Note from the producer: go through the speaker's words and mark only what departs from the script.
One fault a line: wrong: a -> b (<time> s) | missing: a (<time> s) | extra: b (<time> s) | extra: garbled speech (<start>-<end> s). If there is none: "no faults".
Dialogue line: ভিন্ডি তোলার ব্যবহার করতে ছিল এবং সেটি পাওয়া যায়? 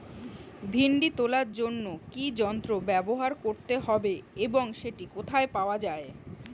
extra: জন্য কি যন্ত্র (1.5 s)
wrong: ছিল -> হবে (3.9 s)
extra: কোথায় (5.2 s)